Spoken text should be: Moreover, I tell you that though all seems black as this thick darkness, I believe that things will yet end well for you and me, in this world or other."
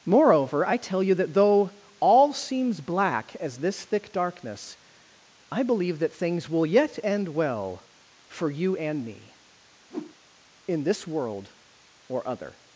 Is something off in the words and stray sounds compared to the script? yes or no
yes